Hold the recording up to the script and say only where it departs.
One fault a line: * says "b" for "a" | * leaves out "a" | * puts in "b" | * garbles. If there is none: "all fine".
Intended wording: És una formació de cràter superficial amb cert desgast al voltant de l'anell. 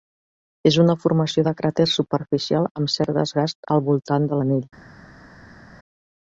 all fine